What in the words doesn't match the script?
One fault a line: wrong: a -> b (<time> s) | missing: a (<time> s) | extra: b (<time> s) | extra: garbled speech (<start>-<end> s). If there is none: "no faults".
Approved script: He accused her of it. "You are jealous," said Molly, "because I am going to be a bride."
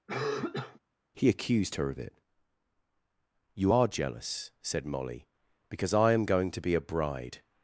no faults